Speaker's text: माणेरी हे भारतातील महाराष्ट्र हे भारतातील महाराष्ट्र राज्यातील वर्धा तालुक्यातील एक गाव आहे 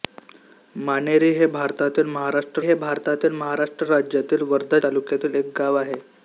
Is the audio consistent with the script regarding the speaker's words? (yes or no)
yes